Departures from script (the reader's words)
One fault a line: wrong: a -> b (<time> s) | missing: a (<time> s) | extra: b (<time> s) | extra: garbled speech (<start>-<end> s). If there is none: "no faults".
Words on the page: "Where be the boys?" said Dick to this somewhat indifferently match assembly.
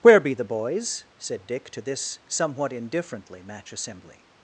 no faults